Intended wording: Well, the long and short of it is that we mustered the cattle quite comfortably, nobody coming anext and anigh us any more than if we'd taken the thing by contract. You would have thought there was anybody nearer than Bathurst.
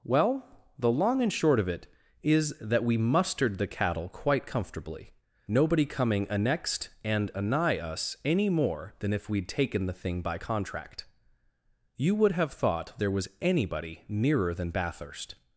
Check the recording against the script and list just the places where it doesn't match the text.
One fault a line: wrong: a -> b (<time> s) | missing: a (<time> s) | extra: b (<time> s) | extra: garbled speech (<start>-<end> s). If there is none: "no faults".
no faults